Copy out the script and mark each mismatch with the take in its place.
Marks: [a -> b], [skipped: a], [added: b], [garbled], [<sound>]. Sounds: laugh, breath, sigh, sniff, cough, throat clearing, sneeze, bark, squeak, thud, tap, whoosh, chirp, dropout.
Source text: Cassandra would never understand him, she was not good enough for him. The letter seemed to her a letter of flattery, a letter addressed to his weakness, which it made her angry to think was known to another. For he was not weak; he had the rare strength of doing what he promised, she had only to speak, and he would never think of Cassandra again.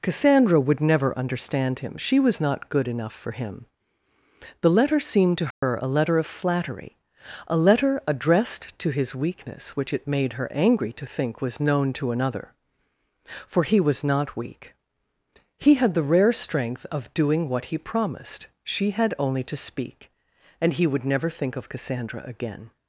Cassandra would never understand him, she was not good enough for him. The letter seemed to her [dropout] a letter of flattery, a letter addressed to his weakness, which it made her angry to think was known to another. For he was not weak; he had the rare strength of doing what he promised, she had only to speak, and he would never think of Cassandra again.